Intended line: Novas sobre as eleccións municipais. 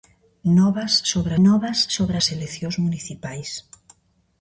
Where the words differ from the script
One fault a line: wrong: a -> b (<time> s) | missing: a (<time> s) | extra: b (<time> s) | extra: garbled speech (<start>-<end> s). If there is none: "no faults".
extra: novas sobre (1.4 s)